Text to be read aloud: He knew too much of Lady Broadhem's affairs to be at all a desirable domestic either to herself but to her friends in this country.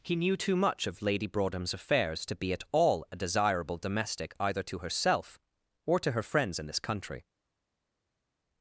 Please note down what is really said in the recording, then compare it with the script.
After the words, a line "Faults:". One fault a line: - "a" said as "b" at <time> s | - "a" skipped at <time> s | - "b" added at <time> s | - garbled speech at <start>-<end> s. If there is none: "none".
He knew too much of Lady Broadhem's affairs to be at all a desirable domestic either to herself or to her friends in this country.
Faults:
- "but" said as "or" at 5.8 s